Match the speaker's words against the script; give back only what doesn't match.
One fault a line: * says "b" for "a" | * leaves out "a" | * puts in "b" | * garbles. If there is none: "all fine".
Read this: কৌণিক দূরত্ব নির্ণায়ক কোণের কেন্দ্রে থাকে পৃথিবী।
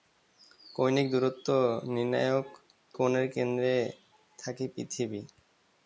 all fine